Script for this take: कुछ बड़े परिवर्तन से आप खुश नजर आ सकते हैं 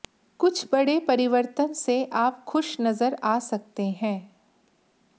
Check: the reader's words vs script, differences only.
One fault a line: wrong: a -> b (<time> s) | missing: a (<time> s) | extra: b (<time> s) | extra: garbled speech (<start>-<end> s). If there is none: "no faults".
no faults